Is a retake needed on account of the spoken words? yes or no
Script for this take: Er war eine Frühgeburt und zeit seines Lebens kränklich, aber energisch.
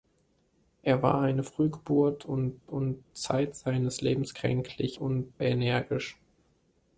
yes